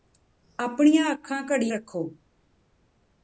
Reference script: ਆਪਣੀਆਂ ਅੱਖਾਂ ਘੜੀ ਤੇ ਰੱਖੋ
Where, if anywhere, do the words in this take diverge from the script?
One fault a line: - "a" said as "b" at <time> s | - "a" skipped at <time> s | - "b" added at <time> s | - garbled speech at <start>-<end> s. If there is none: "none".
- "ਤੇ" skipped at 1.7 s